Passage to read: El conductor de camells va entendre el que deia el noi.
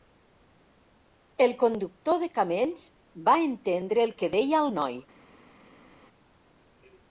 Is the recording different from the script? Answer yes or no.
no